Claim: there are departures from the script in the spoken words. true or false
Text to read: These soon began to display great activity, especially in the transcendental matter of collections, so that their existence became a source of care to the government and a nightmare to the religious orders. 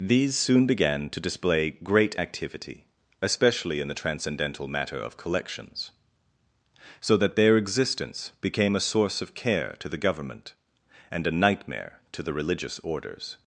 false